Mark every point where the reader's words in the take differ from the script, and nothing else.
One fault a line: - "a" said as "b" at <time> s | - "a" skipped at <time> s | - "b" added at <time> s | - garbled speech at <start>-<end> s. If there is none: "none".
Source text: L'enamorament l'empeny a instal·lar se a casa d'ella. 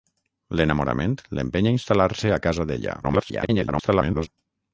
- garbled speech at 3.0-4.3 s